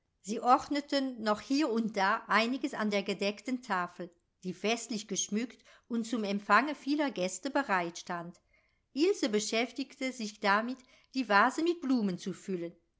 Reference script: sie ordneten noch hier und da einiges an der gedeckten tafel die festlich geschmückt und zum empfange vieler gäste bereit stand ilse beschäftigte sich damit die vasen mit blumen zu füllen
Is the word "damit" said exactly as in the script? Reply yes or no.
yes